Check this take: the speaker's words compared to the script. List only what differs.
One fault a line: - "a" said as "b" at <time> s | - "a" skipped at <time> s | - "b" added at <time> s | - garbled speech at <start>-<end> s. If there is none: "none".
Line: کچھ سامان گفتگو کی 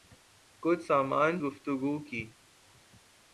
none